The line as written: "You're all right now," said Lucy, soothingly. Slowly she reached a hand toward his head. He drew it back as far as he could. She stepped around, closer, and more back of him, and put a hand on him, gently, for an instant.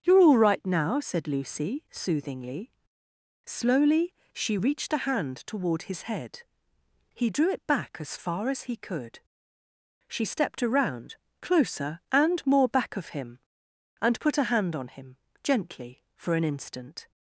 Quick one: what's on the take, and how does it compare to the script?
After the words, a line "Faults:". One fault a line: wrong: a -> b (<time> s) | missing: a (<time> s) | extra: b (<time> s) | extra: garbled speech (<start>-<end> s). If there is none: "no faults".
"You're all right now," said Lucy, soothingly. Slowly she reached a hand toward his head. He drew it back as far as he could. She stepped around, closer, and more back of him, and put a hand on him, gently, for an instant.
Faults:
no faults